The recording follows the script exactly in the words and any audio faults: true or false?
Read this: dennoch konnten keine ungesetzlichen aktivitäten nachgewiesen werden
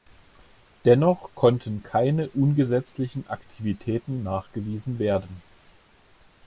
true